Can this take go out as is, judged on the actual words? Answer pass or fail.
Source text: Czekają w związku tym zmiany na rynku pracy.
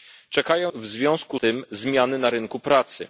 pass